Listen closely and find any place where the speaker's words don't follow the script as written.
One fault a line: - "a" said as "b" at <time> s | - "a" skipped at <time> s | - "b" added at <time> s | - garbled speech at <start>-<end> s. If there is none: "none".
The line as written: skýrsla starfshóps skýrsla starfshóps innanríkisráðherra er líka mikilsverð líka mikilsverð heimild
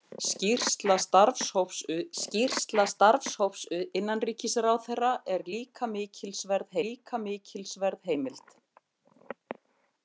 none